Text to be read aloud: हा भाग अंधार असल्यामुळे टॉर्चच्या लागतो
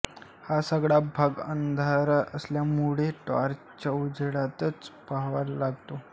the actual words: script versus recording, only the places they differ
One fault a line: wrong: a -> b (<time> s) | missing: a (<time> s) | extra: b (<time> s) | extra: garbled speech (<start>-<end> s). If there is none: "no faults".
extra: सगळा (0.6 s)
extra: उजेडातच पहावा (3.9 s)